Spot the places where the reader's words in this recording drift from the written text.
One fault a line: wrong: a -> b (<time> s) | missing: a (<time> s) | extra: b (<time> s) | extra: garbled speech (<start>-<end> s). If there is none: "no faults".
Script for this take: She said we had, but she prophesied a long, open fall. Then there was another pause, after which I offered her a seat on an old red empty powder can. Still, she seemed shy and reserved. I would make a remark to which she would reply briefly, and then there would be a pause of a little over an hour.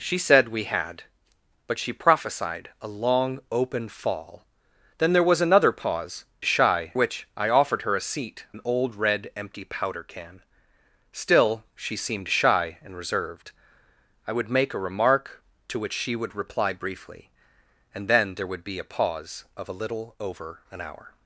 wrong: after -> shy (6.4 s)
missing: on (8.4 s)